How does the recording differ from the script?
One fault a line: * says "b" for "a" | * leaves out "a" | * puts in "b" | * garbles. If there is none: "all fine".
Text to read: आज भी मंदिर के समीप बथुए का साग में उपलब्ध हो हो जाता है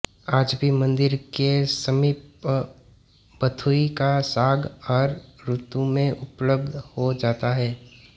* puts in "हर ऋतु"
* leaves out "हो"